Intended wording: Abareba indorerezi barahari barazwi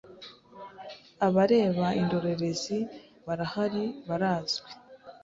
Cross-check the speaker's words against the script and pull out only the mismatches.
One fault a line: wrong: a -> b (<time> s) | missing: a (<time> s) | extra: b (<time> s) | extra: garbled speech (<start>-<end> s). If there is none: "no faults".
no faults